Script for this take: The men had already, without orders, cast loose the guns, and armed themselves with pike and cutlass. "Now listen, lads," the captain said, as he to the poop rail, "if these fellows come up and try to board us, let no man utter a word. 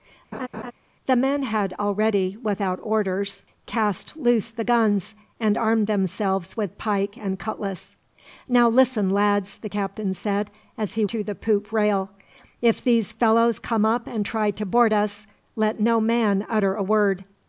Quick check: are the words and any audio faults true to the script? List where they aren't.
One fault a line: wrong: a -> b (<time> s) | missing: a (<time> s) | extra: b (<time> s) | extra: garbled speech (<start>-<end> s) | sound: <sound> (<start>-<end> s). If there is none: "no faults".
sound: laugh (0.3-0.7 s)